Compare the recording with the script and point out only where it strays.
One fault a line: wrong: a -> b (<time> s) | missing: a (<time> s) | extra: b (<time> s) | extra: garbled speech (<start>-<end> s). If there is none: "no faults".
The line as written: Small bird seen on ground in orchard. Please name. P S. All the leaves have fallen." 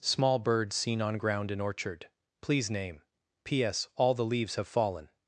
no faults